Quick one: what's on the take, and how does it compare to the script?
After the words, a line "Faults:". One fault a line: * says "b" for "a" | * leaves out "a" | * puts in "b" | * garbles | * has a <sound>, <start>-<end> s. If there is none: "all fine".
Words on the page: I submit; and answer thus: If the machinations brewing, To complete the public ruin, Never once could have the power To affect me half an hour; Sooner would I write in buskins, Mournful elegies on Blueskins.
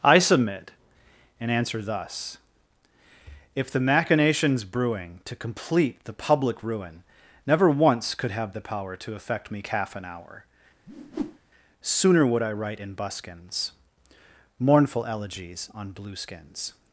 I submit; and answer thus: If the machinations brewing, To complete the public ruin, Never once could have the power To affect me calf an hour; Sooner would I write in buskins, Mournful elegies on Blueskins.
Faults:
* says "calf" for "half"
* has a whoosh, 10.9-11.4 s